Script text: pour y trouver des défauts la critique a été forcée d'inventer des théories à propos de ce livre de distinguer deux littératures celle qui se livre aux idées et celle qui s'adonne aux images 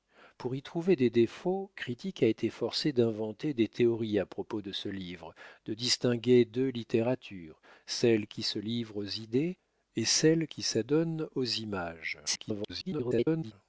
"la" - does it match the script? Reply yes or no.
no